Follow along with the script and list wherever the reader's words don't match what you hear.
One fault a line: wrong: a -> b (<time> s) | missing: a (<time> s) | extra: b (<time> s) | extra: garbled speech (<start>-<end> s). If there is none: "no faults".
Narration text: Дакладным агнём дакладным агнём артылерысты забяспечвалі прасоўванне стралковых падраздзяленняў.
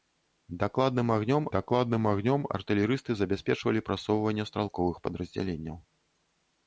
no faults